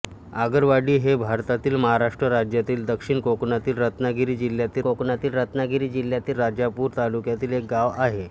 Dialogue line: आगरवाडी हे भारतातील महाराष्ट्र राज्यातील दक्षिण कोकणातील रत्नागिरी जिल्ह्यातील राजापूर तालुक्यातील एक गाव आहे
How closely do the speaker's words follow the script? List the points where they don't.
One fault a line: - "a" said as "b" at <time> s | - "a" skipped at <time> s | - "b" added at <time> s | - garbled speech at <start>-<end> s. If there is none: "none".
- "कोकणातील रत्नागिरी जिल्ह्यातील" added at 4.8 s